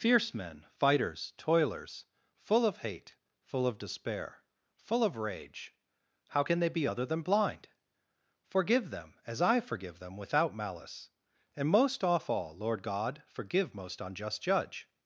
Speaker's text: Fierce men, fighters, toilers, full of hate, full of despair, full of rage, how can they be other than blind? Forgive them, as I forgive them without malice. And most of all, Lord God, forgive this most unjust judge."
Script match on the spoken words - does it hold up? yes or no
no